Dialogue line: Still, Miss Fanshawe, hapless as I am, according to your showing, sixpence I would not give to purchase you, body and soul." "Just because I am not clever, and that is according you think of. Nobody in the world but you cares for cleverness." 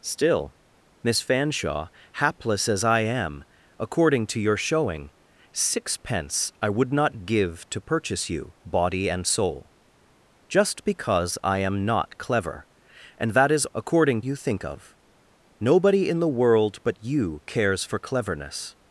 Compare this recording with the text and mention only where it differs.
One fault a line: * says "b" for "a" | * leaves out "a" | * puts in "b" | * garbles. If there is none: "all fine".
all fine